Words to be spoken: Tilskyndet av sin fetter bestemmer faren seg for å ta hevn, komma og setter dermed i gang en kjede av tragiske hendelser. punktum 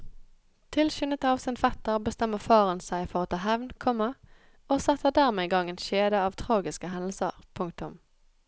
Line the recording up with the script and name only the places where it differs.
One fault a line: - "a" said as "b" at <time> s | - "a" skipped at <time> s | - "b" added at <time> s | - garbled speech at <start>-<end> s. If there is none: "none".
none